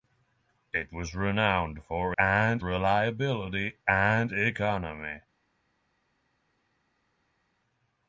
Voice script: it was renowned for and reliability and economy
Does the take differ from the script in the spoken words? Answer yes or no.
no